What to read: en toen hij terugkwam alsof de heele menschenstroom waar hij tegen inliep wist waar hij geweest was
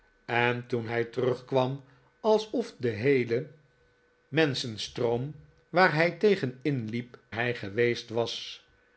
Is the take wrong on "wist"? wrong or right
wrong